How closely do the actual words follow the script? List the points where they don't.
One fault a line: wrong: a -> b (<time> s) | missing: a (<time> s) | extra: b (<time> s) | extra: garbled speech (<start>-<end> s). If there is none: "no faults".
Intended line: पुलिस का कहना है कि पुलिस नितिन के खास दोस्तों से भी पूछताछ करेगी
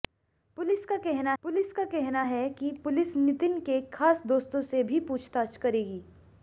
extra: पुलिस का कहना (1.4 s)